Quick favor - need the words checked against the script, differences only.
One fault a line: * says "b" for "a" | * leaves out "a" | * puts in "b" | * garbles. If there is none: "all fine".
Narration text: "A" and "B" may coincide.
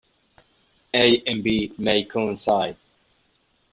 all fine